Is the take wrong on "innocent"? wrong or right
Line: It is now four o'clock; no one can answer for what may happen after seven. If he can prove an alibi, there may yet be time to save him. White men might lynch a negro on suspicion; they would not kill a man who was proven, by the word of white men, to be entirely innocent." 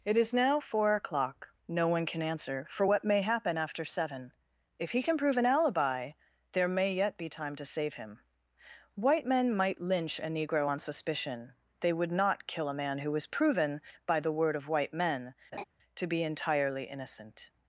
right